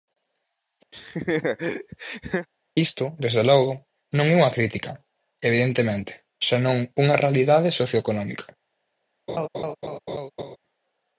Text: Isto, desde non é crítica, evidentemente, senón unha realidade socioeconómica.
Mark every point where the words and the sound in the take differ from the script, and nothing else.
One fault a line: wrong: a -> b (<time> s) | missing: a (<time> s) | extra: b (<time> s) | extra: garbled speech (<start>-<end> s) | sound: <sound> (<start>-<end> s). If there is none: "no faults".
sound: laugh (0.9-2.5 s)
extra: logo (3.5 s)
extra: unha (4.4 s)
sound: laugh (9.3-10.6 s)